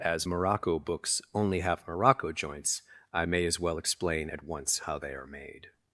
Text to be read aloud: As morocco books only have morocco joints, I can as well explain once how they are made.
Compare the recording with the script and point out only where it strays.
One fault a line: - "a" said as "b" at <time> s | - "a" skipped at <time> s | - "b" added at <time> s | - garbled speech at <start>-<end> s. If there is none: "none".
- "can" said as "may" at 3.2 s
- "at" added at 4.3 s